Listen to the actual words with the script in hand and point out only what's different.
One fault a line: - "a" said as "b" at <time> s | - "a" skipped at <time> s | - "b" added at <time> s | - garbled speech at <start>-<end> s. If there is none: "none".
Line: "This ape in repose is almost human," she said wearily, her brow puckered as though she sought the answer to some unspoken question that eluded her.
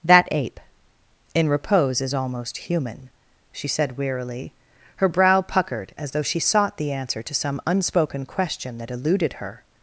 - "This" said as "That" at 0.0 s